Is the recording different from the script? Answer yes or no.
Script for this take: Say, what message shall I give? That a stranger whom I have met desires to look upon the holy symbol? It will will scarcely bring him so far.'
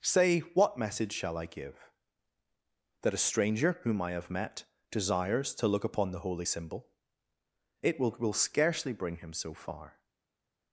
no